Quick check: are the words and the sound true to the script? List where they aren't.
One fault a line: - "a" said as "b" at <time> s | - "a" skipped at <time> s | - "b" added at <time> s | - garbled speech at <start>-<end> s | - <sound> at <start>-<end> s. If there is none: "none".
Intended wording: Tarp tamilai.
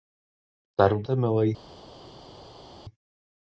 none